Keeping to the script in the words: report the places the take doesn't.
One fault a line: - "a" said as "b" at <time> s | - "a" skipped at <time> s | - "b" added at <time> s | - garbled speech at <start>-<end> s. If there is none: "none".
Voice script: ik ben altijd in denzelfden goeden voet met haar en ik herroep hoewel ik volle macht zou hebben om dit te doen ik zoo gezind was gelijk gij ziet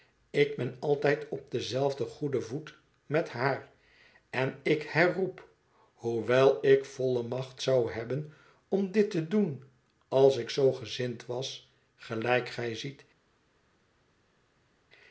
- "in" said as "op" at 1.3 s
- "als" added at 10.1 s